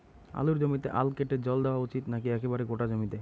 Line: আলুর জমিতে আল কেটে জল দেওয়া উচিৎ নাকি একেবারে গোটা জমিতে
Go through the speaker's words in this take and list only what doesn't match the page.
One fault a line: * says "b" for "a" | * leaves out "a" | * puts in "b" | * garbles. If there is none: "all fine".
all fine